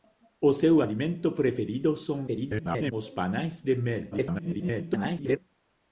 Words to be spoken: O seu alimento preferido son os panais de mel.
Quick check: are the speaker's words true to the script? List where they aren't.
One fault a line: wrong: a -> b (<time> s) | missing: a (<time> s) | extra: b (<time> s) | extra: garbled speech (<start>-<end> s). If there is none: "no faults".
extra: garbled speech (2.3-2.9 s)
extra: garbled speech (4.1-5.4 s)